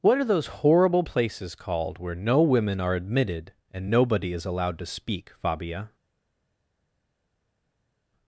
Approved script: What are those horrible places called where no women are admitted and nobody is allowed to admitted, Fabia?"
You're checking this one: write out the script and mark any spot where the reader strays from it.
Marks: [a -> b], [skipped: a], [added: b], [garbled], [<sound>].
What are those horrible places called where no women are admitted and nobody is allowed to [admitted, -> speak] Fabia?"